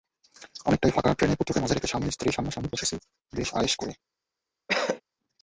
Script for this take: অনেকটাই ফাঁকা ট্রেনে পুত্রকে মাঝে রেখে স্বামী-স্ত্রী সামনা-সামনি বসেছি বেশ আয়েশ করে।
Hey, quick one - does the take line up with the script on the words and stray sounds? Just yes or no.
no